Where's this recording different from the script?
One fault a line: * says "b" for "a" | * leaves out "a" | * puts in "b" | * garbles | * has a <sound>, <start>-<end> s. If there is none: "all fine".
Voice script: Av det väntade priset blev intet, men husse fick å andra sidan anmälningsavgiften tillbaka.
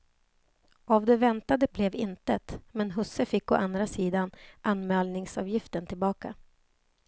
* leaves out "priset"